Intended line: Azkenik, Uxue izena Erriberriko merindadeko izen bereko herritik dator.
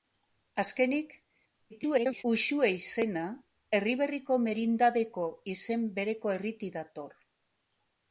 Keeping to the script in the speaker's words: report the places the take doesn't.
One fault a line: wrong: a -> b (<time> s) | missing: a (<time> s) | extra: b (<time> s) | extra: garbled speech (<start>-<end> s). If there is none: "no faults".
extra: garbled speech (1.7-2.2 s)